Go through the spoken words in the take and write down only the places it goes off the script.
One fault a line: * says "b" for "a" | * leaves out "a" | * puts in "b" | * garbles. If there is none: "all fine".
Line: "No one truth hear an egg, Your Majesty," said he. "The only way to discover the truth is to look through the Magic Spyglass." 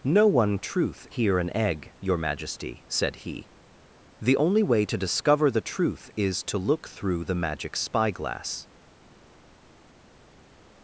all fine